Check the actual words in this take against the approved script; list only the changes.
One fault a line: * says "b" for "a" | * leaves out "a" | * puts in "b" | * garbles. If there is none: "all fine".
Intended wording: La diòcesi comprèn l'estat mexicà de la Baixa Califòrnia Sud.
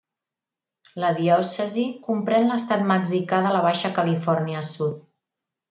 all fine